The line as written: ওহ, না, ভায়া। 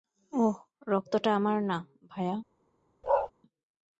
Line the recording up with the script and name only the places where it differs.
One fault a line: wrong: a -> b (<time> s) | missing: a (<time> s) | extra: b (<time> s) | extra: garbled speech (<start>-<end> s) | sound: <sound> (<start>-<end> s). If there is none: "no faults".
extra: রক্তটা আমার (0.9 s)
sound: bark (3.0-3.3 s)